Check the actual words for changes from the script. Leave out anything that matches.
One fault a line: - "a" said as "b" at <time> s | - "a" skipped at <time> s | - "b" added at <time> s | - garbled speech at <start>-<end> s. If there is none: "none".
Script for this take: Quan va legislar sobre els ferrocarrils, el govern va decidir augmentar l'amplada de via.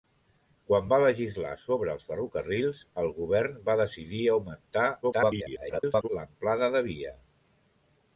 - garbled speech at 5.0-6.1 s